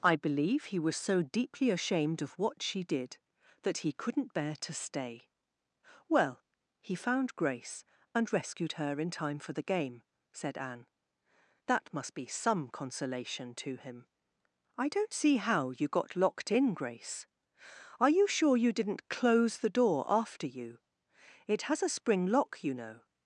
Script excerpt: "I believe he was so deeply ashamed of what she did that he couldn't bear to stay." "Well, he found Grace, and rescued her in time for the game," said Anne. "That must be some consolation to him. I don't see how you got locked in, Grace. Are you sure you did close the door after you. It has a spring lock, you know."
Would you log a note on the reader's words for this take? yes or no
yes